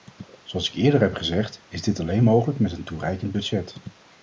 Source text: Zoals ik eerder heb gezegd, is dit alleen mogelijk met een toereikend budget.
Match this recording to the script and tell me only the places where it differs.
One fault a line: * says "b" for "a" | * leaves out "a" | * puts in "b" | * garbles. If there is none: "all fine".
all fine